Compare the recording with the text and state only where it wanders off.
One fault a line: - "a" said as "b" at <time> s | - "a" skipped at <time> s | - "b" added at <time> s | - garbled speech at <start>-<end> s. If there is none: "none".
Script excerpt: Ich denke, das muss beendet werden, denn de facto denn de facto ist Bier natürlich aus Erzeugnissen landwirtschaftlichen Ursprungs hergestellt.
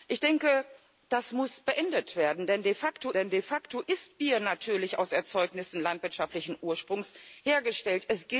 none